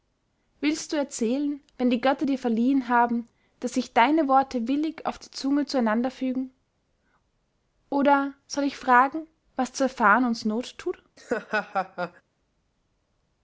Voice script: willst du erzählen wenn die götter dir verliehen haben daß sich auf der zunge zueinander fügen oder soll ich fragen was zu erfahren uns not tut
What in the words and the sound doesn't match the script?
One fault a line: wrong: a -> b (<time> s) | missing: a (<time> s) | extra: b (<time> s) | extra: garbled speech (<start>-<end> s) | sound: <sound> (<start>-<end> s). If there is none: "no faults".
extra: deine worte willig (3.9 s)
sound: laugh (11.2-12.2 s)